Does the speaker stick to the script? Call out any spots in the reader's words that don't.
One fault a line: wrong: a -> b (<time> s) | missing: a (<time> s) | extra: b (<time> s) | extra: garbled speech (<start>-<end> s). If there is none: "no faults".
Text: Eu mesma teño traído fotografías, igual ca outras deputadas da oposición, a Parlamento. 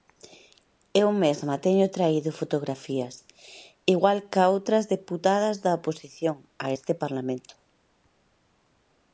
extra: este (6.8 s)